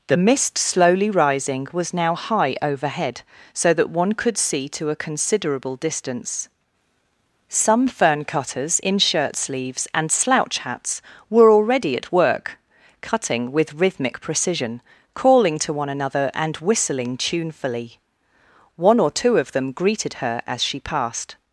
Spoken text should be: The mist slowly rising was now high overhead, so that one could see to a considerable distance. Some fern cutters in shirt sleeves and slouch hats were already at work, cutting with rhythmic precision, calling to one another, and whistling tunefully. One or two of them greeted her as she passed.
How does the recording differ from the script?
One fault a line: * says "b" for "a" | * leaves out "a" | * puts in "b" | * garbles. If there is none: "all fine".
all fine